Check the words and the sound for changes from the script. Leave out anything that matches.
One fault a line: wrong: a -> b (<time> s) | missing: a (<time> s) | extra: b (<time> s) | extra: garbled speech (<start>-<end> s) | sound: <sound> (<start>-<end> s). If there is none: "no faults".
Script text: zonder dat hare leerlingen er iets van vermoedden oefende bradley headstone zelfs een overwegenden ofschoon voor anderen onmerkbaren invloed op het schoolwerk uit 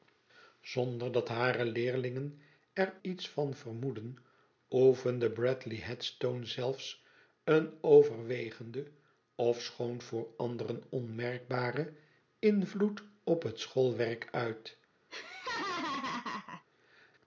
sound: laugh (15.1-16.6 s)